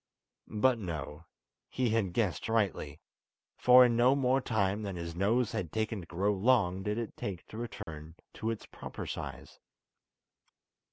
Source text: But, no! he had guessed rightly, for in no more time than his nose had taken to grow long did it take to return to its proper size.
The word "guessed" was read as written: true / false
true